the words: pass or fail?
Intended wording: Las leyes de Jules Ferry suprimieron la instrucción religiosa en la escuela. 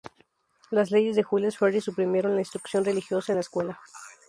pass